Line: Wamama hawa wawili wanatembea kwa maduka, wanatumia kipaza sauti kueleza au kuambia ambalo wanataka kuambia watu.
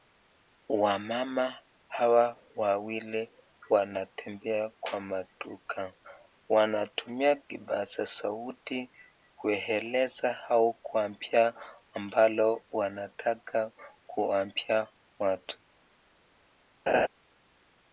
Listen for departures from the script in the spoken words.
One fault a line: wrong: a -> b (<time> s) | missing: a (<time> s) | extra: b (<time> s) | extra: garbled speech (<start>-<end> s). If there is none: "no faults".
no faults